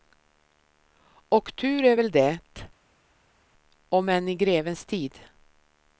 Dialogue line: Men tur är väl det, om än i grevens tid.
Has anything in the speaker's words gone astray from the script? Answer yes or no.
yes